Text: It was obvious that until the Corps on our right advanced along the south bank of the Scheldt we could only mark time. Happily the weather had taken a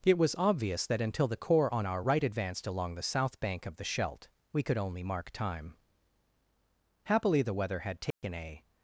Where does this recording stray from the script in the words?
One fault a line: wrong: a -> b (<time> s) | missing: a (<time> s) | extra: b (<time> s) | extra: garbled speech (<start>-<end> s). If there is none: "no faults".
no faults